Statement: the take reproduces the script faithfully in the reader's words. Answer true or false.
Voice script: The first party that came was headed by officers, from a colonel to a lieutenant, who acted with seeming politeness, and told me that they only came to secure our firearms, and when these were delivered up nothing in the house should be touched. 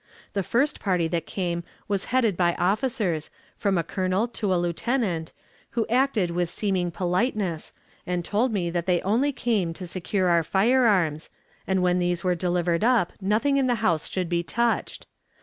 true